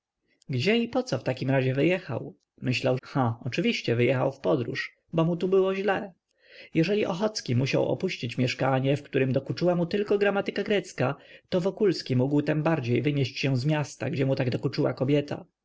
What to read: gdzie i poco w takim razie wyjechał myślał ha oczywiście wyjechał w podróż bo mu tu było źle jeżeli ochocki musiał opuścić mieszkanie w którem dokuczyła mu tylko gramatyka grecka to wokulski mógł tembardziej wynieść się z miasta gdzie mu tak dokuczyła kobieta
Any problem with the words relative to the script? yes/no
no